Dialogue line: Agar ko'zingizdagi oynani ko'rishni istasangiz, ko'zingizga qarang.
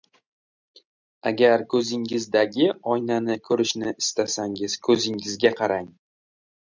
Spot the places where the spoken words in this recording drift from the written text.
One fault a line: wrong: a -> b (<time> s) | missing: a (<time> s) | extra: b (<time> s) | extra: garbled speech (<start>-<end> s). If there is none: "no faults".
no faults